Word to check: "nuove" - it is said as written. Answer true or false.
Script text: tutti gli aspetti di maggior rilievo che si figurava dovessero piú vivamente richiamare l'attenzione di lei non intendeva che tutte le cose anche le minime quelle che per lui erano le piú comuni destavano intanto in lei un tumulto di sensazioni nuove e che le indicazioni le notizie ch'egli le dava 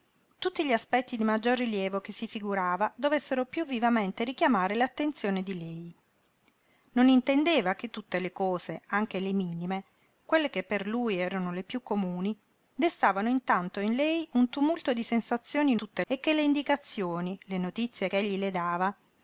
false